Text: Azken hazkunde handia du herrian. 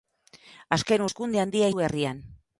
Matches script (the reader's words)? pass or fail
pass